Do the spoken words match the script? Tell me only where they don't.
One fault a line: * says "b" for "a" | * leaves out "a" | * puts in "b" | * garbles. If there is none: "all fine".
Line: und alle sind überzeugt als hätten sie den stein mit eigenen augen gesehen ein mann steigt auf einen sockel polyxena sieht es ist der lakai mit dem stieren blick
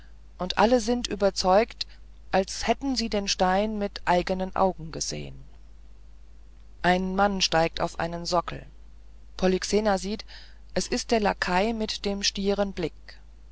all fine